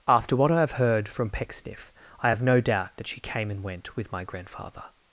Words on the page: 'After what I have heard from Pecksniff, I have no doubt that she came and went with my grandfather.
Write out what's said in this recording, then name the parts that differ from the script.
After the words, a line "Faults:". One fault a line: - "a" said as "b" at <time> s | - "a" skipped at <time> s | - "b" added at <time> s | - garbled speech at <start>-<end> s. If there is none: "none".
'After what I have heard from Pecksniff, I have no doubt that she came and went with my grandfather.
Faults:
none